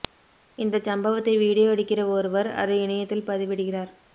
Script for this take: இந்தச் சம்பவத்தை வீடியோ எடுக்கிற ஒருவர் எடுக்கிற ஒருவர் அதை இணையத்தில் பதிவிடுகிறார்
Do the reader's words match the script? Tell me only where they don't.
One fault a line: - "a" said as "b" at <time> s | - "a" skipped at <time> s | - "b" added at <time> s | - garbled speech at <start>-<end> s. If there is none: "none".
- "எடுக்கிற ஒருவர்" skipped at 2.5 s